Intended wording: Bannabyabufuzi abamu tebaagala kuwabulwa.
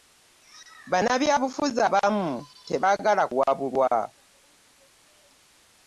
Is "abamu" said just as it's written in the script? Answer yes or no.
yes